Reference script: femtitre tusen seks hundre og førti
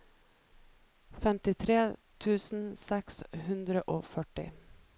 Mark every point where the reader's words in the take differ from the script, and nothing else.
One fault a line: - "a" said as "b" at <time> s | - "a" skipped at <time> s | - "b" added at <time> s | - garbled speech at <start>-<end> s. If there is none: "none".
none